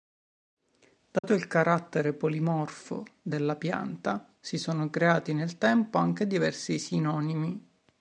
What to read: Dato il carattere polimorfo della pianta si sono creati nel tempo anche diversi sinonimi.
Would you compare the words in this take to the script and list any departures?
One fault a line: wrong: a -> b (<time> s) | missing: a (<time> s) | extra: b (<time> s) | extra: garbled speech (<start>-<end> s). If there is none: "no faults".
no faults